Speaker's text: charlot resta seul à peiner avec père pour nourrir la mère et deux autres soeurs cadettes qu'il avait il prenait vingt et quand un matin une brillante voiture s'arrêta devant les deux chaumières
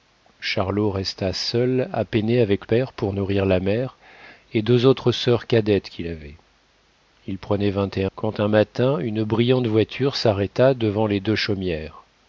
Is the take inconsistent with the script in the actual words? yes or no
no